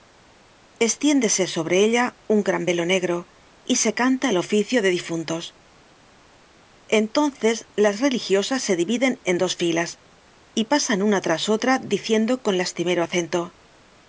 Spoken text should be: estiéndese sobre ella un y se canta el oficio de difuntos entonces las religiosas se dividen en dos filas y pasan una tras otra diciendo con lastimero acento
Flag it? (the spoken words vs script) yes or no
yes